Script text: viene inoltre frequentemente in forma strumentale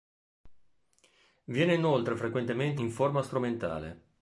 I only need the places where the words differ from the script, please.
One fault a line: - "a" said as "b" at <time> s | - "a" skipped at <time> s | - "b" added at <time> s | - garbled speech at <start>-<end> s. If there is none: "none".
none